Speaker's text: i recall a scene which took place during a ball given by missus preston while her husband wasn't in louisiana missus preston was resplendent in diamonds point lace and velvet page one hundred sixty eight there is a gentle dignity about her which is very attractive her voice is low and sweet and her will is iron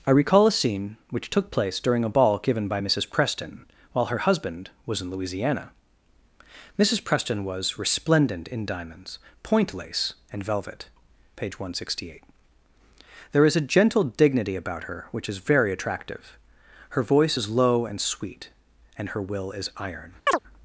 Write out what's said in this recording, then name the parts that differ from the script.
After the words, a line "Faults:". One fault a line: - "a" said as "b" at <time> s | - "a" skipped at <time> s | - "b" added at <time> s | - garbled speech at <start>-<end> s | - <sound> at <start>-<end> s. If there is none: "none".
i recall a scene which took place during a ball given by missus preston while her husband was in louisiana missus preston was resplendent in diamonds point lace and velvet page one hundred sixty eight there is a gentle dignity about her which is very attractive her voice is low and sweet and her will is iron
Faults:
- "wasn't" said as "was" at 4.8 s
- chirp at 20.3-20.4 s